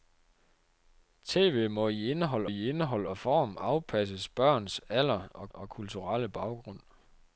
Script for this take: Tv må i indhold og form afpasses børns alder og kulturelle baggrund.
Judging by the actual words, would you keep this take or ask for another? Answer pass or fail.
fail